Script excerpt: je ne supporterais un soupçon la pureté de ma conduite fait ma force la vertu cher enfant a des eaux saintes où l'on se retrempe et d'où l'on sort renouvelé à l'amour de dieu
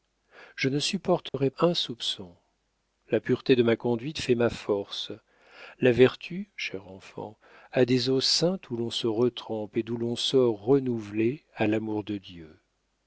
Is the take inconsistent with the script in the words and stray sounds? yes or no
yes